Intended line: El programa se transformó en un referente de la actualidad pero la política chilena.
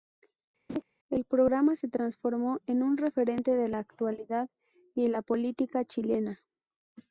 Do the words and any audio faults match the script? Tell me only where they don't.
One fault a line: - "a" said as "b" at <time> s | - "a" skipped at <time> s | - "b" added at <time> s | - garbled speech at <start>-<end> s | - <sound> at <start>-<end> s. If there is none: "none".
- laugh at 0.7-0.8 s
- "pero" said as "y" at 4.9 s